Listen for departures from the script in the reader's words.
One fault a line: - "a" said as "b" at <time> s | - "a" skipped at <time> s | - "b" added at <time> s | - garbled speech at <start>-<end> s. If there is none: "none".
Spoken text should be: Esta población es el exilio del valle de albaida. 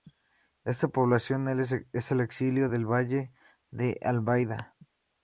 none